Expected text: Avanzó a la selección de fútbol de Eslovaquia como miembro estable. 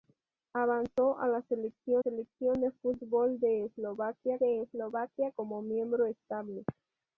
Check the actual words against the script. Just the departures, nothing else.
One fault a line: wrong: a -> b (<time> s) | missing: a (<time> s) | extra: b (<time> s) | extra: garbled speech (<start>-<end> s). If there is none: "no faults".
extra: selección (2.0 s)
extra: de Eslovaquia (4.4 s)